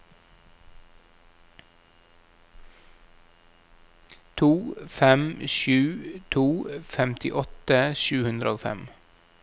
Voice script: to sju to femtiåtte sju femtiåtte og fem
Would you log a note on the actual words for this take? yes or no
yes